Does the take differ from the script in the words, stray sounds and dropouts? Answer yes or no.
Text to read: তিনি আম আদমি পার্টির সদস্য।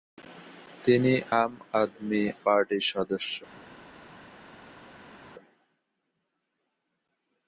no